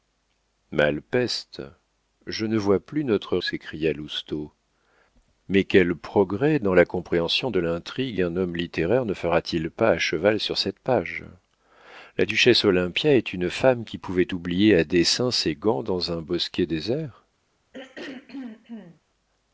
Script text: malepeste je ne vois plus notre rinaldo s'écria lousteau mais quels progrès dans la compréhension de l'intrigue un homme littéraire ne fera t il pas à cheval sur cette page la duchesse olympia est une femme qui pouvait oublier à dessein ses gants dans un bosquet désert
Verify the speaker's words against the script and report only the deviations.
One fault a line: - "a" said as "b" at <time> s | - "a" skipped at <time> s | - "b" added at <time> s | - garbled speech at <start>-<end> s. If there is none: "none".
- "rinaldo" skipped at 3.4 s